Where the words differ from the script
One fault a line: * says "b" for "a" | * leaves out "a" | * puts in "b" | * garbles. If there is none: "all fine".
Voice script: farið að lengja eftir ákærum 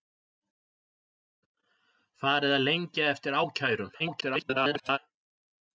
* garbles